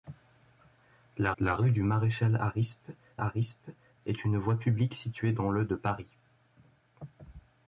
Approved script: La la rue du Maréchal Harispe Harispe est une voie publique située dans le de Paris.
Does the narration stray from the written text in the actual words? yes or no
no